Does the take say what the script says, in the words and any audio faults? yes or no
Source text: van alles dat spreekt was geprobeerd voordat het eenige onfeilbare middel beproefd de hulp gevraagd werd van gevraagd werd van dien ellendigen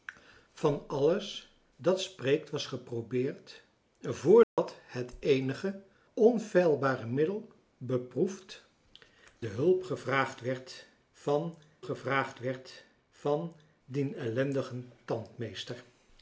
no